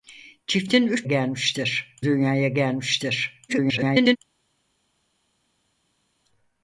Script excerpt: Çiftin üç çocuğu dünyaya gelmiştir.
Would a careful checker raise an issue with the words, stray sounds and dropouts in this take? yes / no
yes